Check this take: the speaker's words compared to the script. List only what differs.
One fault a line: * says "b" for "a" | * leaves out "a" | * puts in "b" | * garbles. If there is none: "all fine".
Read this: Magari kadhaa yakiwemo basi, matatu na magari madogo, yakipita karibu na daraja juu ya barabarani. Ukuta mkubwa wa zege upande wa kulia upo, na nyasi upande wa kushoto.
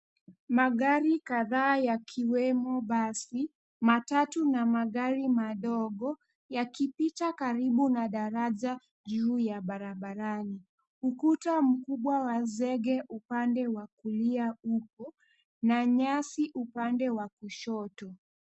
all fine